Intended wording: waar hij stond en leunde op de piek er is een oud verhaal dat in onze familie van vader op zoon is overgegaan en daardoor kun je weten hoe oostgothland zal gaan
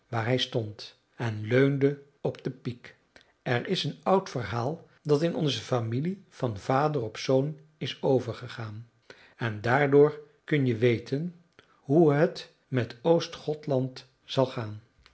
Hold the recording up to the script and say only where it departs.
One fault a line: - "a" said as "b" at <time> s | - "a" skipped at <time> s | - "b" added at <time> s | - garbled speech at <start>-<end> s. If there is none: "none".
- "het met" added at 12.1 s